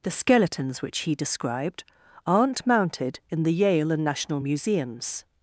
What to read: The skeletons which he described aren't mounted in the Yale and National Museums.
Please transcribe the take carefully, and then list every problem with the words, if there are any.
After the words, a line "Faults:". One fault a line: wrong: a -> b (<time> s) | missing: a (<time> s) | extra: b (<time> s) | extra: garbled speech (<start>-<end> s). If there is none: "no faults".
The skeletons which he described aren't mounted in the Yale and National Museums.
Faults:
no faults